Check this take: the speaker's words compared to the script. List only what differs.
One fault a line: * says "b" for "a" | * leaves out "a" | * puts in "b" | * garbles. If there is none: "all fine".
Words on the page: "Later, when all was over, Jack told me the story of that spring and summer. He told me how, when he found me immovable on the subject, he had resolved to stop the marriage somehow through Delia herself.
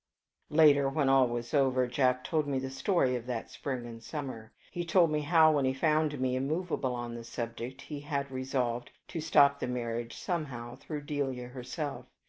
all fine